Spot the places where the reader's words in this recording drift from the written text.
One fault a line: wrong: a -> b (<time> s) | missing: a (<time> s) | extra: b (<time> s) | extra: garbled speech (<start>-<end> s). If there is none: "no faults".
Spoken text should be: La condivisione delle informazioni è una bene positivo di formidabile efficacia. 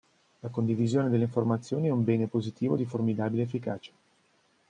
wrong: una -> un (1.9 s)